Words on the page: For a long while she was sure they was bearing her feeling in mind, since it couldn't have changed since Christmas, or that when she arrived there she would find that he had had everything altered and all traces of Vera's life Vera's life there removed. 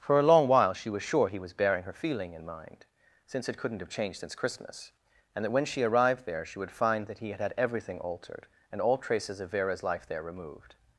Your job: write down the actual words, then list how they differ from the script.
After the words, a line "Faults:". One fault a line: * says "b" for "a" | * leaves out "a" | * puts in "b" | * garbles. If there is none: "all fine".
For a long while she was sure he was bearing her feeling in mind, since it couldn't have changed since Christmas, and that when she arrived there she would find that he had had everything altered and all traces of Vera's life there removed.
Faults:
* says "he" for "they"
* says "and" for "or"
* leaves out "Vera's life"